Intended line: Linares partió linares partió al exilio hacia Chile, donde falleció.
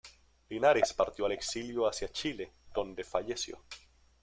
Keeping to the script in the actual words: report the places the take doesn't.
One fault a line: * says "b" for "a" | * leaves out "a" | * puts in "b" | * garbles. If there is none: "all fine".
* leaves out "linares partió"